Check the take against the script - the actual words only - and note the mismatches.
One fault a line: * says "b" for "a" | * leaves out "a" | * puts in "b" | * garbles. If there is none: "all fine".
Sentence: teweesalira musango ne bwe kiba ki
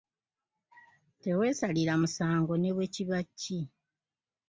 all fine